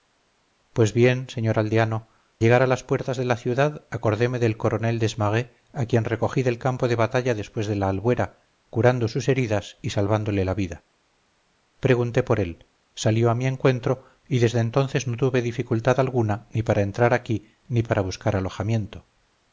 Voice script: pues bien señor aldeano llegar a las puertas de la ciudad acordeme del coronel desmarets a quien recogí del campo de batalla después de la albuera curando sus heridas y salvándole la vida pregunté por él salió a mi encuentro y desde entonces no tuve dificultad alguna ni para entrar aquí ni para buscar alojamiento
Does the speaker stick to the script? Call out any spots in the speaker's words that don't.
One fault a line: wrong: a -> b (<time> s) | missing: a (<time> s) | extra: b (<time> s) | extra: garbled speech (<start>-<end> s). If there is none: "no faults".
no faults